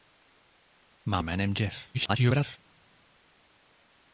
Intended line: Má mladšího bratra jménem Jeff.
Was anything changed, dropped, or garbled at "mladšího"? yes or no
yes